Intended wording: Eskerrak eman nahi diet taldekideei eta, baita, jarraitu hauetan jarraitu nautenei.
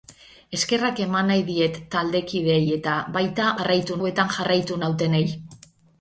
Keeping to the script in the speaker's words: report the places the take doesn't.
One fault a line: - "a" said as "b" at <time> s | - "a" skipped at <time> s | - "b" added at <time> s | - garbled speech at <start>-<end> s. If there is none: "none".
none